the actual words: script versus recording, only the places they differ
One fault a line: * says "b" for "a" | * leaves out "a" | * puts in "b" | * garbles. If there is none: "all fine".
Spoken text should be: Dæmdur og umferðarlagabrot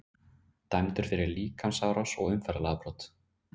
* puts in "fyrir líkamsárás"